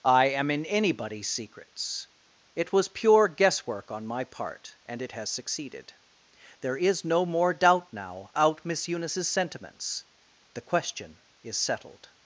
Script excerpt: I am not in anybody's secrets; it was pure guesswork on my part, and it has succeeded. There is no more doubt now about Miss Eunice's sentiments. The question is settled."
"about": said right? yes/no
no